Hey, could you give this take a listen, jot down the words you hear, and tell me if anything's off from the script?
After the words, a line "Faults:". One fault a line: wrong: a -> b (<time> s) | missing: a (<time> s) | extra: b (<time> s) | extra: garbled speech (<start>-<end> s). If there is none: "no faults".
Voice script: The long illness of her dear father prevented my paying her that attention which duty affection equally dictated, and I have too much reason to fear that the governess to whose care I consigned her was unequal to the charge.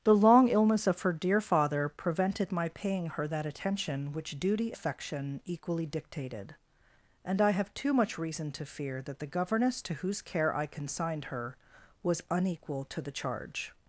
The long illness of her dear father prevented my paying her that attention which duty affection equally dictated, and I have too much reason to fear that the governess to whose care I consigned her was unequal to the charge.
Faults:
no faults